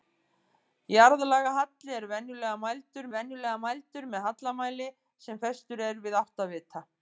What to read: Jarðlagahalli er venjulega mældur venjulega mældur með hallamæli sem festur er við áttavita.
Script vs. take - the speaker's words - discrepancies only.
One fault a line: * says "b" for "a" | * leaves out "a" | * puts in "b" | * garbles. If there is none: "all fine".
all fine